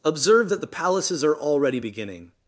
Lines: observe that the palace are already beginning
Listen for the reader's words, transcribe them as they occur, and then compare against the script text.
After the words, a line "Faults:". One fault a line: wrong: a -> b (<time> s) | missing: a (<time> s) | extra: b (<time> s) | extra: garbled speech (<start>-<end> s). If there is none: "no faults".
observe that the palaces are already beginning
Faults:
wrong: palace -> palaces (0.7 s)